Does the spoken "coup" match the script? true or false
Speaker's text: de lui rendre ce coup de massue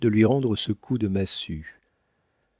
true